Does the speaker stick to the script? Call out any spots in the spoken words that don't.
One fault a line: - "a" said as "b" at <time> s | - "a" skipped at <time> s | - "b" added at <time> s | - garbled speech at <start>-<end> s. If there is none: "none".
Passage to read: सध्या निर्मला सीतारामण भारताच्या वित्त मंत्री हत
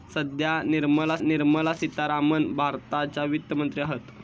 - "निर्मला" added at 1.2 s